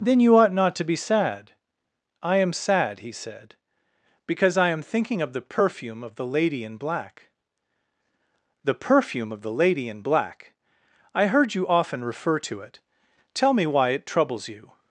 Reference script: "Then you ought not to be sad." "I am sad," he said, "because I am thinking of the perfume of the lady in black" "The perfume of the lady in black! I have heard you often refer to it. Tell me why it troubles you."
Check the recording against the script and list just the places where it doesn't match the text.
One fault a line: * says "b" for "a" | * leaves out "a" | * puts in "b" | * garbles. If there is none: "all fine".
* leaves out "have"